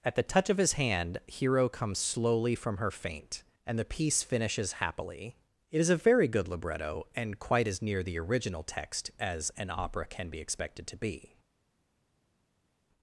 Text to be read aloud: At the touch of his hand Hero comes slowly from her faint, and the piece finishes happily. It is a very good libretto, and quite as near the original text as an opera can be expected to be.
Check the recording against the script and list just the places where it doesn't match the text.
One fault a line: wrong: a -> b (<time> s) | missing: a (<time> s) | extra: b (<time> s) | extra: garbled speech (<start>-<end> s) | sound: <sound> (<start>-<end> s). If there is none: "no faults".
no faults